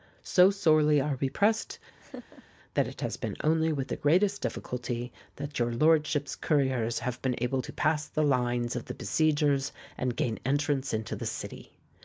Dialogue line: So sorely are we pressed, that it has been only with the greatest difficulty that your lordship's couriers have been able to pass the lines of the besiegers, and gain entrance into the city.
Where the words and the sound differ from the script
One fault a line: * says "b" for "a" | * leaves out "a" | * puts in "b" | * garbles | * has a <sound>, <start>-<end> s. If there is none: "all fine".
* has a laugh, 2.0-2.4 s